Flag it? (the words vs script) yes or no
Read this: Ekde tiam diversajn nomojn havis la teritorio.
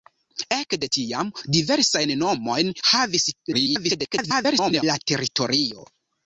yes